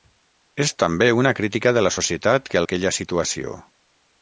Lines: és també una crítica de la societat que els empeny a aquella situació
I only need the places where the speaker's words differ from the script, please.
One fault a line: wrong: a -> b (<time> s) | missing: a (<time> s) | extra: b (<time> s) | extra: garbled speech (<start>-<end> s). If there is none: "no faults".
missing: els empeny a (2.6 s)